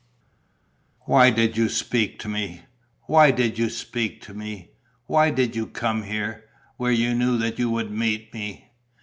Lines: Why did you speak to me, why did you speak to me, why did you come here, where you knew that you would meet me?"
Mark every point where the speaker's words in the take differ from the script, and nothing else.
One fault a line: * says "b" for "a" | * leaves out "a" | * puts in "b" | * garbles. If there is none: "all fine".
all fine